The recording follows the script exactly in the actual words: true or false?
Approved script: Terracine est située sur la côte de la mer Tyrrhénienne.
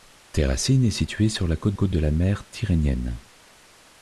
false